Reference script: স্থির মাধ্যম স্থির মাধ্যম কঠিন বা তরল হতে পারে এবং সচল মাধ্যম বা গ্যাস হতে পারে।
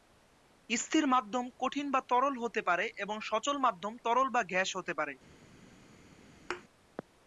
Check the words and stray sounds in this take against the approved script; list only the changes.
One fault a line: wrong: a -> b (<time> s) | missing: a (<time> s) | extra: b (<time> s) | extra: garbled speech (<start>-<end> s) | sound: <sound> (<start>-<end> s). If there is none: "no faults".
missing: স্থির মাধ্যম (1.4 s)
extra: তরল (4.0 s)
sound: thud (6.5-6.6 s)